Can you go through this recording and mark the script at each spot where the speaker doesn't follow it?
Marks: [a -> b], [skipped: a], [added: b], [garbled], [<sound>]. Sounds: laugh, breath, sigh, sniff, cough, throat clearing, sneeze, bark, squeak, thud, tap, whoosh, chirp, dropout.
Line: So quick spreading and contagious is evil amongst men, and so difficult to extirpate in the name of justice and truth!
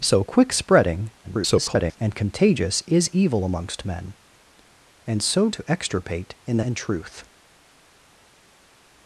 So quick spreading [garbled] and contagious is evil amongst men, and so [skipped: difficult] to extirpate in the [skipped: name of justice] and truth!